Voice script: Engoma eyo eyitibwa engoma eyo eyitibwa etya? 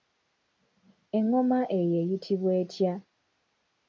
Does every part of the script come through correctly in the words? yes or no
no